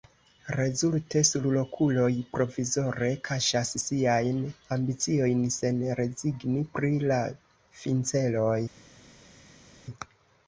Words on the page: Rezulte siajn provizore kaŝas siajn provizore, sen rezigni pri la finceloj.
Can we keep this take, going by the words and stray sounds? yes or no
no